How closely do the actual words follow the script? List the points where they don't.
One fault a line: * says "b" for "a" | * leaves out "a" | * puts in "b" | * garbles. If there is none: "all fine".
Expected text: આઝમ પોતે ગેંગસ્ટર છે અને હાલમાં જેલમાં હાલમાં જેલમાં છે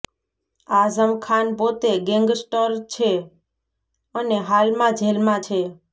* puts in "ખાન"
* leaves out "હાલમાં જેલમાં"